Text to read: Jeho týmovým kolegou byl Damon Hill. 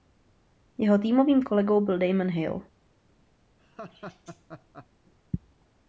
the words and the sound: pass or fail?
fail